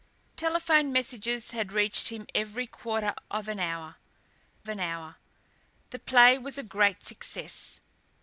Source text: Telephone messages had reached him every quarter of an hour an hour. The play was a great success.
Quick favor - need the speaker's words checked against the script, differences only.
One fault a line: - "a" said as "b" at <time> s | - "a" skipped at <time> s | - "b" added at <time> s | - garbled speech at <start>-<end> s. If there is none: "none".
none